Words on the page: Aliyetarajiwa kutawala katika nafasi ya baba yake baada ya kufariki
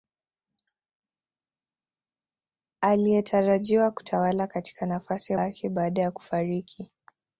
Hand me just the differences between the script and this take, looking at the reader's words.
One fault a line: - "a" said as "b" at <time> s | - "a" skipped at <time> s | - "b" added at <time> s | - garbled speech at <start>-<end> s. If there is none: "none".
- "baba" skipped at 5.4 s